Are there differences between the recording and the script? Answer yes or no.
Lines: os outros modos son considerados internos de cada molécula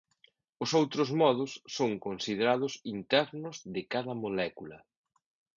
no